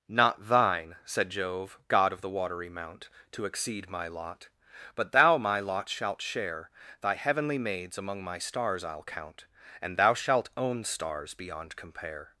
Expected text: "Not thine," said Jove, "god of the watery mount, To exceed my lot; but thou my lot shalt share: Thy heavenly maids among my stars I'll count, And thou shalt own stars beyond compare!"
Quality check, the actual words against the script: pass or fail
pass